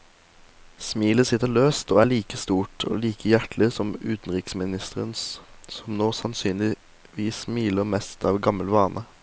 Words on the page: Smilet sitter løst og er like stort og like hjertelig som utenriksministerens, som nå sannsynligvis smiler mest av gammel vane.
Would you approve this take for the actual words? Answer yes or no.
yes